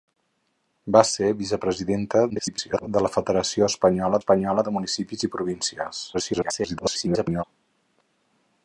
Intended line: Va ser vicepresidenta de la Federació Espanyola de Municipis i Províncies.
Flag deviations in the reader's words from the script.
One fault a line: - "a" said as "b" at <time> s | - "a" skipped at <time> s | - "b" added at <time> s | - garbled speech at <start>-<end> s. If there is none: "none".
- garbled speech at 2.3-2.9 s
- "Espanyola" added at 4.2 s
- garbled speech at 6.1-7.4 s